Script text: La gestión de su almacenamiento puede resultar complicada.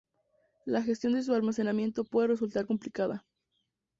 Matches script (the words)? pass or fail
pass